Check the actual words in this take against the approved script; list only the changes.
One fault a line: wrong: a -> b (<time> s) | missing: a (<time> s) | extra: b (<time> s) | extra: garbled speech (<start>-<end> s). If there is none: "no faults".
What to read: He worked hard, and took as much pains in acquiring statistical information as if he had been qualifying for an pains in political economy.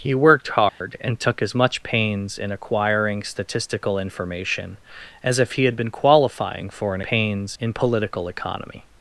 no faults